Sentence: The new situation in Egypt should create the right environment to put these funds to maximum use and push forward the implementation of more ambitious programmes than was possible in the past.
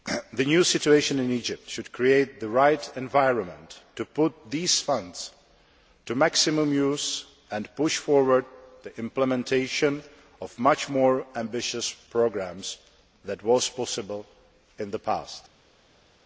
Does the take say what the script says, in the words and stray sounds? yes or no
no